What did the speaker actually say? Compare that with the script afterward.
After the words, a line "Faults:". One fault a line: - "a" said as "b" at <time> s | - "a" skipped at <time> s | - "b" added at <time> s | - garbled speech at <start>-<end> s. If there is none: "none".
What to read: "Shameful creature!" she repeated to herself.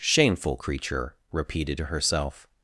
"Shameful creature!" repeated to herself.
Faults:
- "she" skipped at 1.2 s